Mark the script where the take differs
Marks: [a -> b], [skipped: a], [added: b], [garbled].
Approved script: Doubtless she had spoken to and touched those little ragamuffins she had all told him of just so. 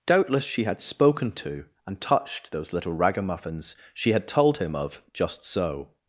Doubtless she had spoken to and touched those little ragamuffins she had [skipped: all] told him of just so.